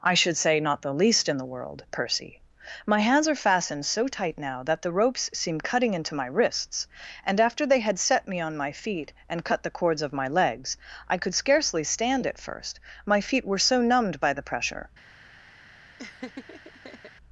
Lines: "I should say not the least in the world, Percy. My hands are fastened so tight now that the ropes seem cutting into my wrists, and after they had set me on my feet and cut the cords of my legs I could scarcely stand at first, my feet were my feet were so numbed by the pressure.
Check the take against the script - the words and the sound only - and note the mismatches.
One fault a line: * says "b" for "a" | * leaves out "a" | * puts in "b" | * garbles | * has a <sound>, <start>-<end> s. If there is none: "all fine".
* leaves out "my feet were"
* has a laugh, 16.0-17.1 s